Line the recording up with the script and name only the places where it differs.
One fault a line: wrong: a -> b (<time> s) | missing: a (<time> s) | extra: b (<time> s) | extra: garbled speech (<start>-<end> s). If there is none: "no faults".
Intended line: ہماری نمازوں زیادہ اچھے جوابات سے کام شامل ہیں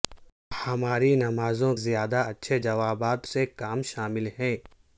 no faults